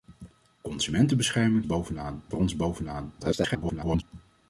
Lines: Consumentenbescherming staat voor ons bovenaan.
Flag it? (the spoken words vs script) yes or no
yes